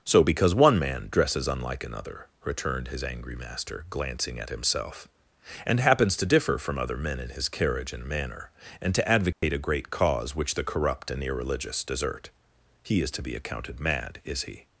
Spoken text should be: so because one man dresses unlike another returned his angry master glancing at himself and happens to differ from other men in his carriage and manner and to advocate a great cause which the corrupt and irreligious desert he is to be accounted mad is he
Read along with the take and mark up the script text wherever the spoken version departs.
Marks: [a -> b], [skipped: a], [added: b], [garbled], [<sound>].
so because one man dresses unlike another returned his angry master glancing at himself and happens to differ from other men in his carriage and manner and to advocate [dropout] a great cause which the corrupt and irreligious desert he is to be accounted mad is he